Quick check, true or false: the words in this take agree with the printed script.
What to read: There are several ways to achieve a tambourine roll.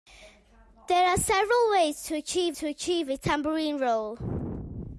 false